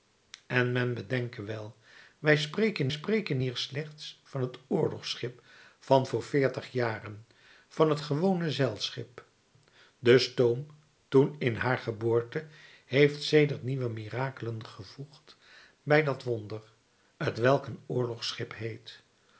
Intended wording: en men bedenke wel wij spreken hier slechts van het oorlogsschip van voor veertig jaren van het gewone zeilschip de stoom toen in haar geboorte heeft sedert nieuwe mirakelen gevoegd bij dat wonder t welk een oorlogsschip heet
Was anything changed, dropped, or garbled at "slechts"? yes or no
no